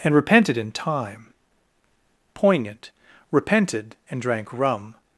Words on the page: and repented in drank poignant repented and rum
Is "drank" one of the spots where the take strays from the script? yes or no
yes